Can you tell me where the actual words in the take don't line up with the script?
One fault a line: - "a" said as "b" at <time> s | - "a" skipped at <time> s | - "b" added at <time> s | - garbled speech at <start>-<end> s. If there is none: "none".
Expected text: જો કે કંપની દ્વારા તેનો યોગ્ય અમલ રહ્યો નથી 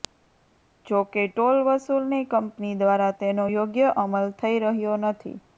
- "ટોલ વસૂલની" added at 1.3 s
- "થઈ" added at 4.4 s